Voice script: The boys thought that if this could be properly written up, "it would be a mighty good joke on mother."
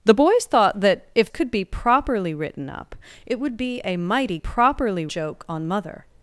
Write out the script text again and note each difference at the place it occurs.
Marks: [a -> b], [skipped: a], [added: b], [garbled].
The boys thought that if [skipped: this] could be properly written up, "it would be a mighty [good -> properly] joke on mother."